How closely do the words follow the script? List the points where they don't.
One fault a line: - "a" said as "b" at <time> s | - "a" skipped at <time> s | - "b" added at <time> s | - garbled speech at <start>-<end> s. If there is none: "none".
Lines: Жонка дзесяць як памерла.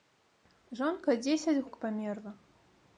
none